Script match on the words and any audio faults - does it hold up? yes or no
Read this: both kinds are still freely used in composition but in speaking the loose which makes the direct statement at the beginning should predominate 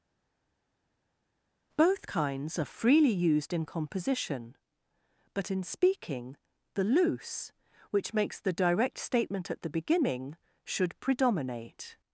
no